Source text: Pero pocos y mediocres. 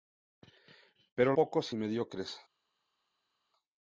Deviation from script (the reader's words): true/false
false